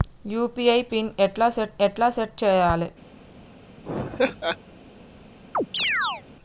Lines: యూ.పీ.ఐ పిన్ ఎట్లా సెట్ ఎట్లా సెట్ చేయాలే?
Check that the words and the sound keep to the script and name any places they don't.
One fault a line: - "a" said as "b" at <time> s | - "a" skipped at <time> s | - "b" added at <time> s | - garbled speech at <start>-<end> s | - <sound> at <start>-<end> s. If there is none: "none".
- laugh at 3.8-4.6 s
- chirp at 5.5-6.2 s